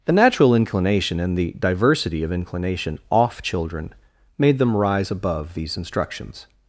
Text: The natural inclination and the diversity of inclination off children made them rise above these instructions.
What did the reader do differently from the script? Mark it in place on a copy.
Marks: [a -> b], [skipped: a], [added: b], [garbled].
The natural inclination and the diversity of inclination off children made them rise above these instructions.